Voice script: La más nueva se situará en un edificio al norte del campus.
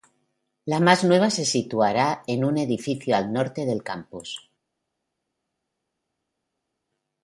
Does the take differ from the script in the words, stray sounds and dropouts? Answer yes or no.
no